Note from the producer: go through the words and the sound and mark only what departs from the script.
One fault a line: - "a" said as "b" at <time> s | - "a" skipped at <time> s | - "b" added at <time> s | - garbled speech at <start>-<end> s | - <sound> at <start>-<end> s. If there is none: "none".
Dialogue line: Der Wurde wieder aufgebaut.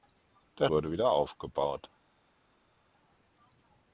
none